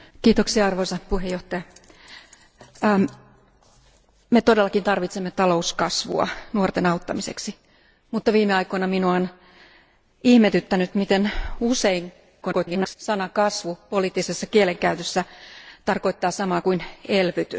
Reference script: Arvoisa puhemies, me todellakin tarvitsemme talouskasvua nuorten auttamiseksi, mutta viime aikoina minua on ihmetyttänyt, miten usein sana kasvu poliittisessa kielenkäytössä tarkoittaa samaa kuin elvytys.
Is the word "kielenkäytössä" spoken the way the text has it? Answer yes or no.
yes